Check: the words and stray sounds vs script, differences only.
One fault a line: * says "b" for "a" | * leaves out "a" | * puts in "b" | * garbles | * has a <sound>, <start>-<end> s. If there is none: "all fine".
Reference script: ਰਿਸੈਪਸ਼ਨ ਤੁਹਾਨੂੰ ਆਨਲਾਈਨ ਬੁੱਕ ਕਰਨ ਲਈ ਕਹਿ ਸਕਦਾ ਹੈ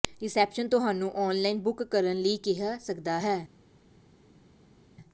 all fine